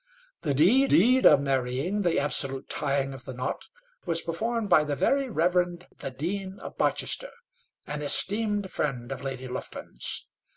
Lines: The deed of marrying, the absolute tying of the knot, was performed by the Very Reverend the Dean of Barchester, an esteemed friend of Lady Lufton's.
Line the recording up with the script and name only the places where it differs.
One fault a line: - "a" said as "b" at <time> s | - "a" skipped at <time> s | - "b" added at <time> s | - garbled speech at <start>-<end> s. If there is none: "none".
- "deed" added at 0.9 s